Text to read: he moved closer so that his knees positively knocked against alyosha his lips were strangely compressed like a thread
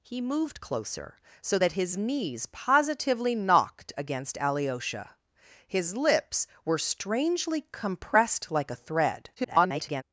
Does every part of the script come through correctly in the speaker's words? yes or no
no